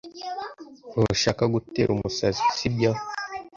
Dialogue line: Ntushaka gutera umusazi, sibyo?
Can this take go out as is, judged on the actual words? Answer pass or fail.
pass